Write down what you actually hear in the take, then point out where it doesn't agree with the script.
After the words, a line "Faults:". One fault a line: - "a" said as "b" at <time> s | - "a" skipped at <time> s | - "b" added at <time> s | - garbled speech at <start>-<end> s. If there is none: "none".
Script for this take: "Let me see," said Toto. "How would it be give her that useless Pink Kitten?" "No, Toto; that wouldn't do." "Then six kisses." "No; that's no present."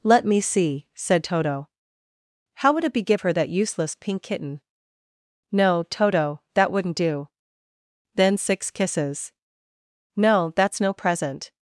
"Let me see," said Toto. "How would it be give her that useless Pink Kitten?" "No, Toto; that wouldn't do." "Then six kisses." "No; that's no present."
Faults:
none